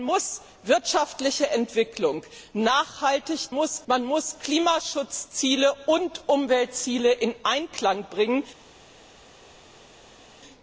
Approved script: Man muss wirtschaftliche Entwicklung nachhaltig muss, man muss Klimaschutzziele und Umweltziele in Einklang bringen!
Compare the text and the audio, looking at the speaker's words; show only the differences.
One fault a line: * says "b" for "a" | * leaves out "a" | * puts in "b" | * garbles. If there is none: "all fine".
all fine